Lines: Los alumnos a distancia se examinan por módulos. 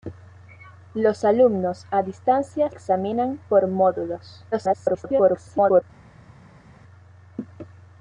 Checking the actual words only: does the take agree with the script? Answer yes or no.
no